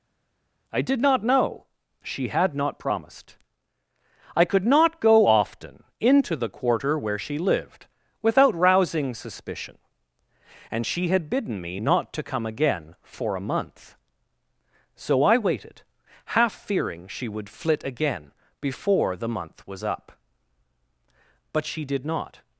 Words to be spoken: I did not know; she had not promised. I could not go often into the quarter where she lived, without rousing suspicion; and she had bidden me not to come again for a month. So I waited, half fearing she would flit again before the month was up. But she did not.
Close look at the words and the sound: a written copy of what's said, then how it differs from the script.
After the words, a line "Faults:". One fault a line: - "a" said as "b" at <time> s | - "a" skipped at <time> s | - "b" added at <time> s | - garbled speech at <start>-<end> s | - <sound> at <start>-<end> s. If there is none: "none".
I did not know; she had not promised. I could not go often into the quarter where she lived, without rousing suspicion; and she had bidden me not to come again for a month. So I waited, half fearing she would flit again before the month was up. But she did not.
Faults:
none